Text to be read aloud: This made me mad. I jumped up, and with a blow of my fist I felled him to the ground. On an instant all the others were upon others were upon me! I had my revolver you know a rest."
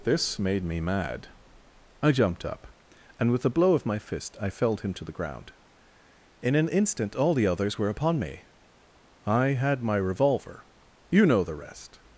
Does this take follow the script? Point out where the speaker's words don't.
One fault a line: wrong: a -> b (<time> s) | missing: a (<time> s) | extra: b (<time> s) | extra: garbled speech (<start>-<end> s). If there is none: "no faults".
wrong: On -> In (6.4 s)
missing: others were upon (8.2 s)
wrong: a -> the (11.4 s)